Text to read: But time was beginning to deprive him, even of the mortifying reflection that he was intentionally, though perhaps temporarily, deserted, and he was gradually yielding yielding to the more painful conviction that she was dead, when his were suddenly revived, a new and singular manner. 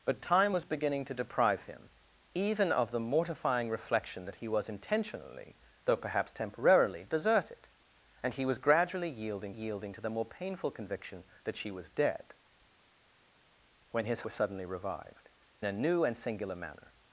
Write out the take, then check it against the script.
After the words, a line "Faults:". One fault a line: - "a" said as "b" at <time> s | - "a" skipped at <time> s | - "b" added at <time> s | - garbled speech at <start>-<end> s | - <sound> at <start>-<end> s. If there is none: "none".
But time was beginning to deprive him, even of the mortifying reflection that he was intentionally, though perhaps temporarily, deserted, and he was gradually yielding yielding to the more painful conviction that she was dead, when his were suddenly revived, a new and singular manner.
Faults:
none